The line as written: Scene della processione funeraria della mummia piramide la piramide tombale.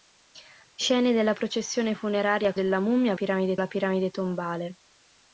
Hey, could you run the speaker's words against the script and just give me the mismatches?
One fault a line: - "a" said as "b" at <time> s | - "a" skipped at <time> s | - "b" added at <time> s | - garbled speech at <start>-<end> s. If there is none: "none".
none